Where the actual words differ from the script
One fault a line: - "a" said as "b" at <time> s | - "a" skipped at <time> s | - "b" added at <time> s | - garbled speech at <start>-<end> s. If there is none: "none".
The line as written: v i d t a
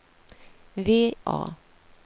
- "i d t" skipped at 1.1 s